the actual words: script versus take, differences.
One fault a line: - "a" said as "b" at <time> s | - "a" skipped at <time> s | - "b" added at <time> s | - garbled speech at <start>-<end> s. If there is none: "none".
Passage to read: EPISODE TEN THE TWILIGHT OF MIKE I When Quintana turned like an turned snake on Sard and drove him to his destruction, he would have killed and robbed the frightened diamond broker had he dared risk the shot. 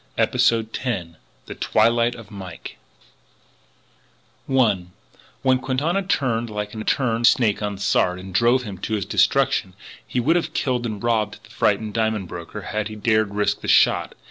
none